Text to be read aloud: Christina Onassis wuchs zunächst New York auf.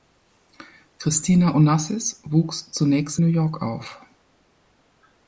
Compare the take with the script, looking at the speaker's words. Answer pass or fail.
pass